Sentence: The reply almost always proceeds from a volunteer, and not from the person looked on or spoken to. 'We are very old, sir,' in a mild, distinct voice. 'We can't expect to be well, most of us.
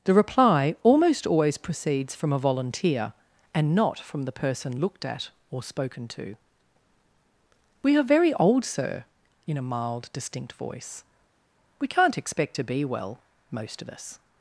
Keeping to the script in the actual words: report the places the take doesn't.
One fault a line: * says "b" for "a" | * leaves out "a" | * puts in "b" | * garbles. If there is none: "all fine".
* says "at" for "on"